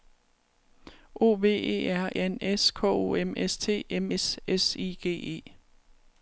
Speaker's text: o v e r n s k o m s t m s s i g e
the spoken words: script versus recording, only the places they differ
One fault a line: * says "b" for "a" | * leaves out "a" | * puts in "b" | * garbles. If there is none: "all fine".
all fine